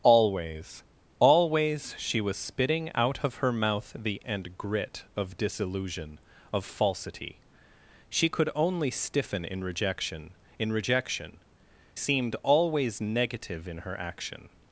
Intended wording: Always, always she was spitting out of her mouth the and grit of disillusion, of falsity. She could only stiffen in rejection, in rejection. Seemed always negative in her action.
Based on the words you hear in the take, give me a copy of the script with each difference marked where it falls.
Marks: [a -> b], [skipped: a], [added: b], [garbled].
Always, always she was spitting out of her mouth the and grit of disillusion, of falsity. She could only stiffen in rejection, in rejection. Seemed always negative in her action.